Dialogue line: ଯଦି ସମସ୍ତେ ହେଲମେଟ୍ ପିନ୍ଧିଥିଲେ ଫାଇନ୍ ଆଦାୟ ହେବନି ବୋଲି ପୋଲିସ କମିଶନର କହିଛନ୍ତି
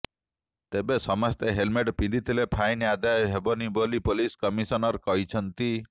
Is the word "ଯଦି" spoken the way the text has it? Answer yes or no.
no